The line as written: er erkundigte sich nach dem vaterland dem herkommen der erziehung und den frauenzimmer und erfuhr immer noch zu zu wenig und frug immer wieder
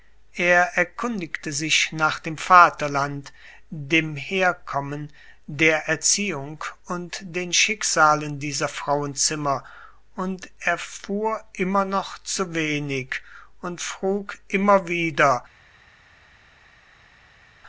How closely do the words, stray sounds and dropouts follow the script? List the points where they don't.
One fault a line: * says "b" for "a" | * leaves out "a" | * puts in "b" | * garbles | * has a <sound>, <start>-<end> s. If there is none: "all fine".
* puts in "schicksalen dieser"
* leaves out "zu"